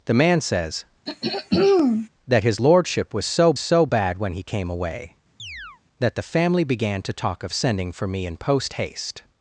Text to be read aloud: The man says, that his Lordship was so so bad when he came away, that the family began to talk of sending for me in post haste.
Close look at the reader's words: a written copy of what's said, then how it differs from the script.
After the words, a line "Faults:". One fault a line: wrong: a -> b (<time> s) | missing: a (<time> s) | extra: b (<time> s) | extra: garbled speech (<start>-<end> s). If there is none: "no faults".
The man says, that his Lordship was so so bad when he came away, that the family began to talk of sending for me in post haste.
Faults:
no faults